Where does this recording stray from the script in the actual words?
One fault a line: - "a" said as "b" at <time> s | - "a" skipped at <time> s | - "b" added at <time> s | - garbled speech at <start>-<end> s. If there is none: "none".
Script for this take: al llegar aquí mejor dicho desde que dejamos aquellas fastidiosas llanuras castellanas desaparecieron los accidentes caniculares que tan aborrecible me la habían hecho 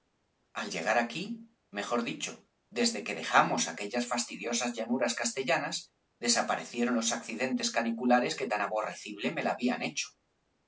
none